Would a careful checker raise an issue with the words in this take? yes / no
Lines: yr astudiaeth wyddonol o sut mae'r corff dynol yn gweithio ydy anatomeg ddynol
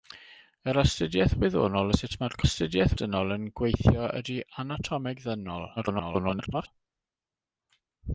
yes